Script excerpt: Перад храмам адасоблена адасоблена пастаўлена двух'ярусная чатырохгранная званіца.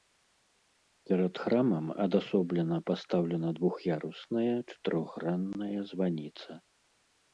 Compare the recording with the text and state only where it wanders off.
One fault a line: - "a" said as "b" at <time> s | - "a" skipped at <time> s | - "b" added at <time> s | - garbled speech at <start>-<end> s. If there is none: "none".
- "адасоблена" skipped at 2.8 s